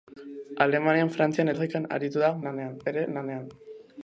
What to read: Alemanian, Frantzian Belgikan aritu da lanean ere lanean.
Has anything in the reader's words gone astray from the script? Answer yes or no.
no